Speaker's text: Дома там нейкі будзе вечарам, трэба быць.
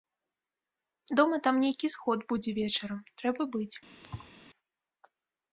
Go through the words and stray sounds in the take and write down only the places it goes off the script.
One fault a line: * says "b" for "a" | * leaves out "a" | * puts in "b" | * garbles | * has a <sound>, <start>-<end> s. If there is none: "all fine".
* puts in "сход"
* has a thud, 4.0-4.3 s